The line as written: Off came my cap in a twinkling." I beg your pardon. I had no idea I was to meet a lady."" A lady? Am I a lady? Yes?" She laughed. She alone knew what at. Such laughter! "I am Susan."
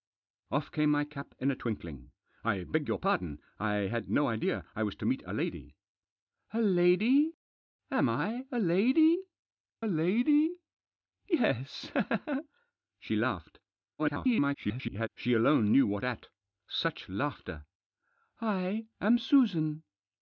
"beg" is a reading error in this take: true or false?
false